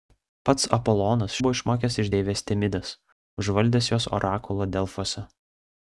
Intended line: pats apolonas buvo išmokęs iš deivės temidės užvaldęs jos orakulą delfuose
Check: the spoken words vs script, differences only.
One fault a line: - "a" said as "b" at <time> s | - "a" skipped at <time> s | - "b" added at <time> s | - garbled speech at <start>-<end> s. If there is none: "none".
none